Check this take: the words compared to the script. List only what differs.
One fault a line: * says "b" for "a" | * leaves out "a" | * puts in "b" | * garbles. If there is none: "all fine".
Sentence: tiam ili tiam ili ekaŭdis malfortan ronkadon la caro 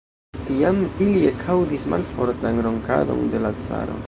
* leaves out "tiam ili"
* puts in "de"